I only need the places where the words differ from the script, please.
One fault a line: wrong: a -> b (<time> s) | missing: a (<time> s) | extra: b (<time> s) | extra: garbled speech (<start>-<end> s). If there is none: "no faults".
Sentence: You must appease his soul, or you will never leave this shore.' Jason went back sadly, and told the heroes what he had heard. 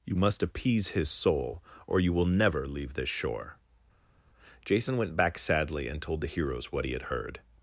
no faults